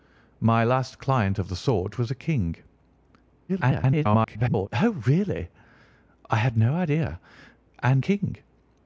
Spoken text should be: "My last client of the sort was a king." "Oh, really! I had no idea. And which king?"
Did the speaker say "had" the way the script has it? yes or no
yes